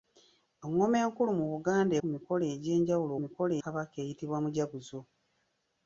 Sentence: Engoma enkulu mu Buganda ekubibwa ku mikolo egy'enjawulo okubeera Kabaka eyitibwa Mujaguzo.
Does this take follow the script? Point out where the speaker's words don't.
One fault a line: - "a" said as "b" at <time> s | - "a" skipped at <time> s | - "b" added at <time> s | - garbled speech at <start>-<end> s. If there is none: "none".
- "ekubibwa" skipped at 1.9 s
- "okubeera" said as "mikolo" at 3.2 s